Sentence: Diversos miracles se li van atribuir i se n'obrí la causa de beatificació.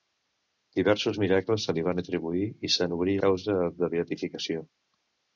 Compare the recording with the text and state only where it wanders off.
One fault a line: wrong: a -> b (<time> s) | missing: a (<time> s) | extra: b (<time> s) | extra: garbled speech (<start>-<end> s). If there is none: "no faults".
missing: la (3.2 s)